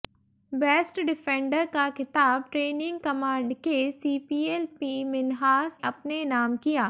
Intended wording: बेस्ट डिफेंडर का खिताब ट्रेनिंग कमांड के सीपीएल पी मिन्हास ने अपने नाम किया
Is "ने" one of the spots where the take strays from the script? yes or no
yes